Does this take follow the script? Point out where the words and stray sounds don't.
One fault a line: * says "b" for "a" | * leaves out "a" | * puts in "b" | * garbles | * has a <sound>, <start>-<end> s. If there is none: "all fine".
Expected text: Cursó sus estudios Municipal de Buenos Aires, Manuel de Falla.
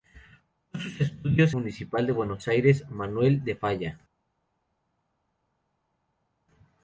all fine